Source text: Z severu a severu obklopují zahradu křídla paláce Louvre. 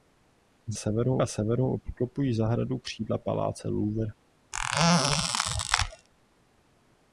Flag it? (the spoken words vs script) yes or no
no